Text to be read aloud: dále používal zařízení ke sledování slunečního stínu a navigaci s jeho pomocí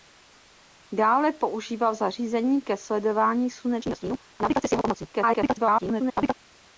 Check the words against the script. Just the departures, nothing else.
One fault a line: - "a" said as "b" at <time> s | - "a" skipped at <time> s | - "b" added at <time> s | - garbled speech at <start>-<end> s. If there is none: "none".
- garbled speech at 5.1-6.3 s